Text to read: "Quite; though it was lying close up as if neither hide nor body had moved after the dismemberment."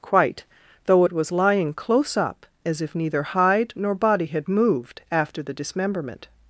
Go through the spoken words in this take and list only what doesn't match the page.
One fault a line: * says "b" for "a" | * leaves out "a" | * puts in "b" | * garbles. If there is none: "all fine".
all fine